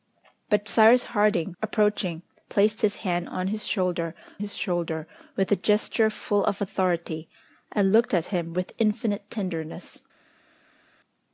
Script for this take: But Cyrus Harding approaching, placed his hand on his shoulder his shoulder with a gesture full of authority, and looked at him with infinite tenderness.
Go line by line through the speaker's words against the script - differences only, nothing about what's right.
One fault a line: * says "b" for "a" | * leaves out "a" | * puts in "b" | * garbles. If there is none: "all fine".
all fine